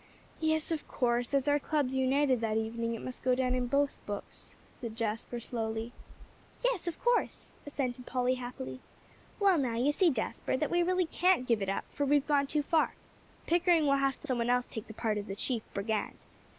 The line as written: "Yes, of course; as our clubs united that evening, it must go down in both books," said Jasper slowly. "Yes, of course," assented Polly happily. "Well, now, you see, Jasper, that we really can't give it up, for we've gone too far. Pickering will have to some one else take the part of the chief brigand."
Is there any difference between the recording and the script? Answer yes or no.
no